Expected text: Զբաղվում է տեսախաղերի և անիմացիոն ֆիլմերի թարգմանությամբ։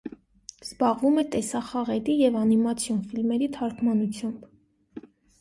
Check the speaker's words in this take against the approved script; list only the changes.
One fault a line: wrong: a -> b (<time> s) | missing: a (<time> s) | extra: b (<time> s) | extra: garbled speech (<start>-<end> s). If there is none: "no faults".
no faults